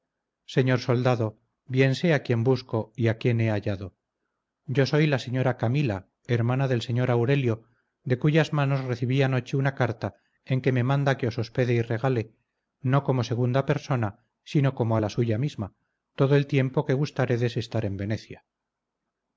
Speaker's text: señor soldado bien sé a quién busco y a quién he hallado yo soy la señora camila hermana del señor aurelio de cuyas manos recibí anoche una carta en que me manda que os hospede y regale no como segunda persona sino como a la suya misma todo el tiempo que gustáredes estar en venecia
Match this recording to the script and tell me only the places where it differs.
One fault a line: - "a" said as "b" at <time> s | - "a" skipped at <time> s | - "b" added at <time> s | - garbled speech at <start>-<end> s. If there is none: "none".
none